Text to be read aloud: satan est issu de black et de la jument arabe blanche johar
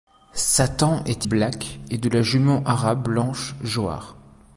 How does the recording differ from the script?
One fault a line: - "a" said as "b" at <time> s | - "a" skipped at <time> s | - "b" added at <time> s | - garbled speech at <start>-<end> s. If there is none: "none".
- "issu de" skipped at 1.3 s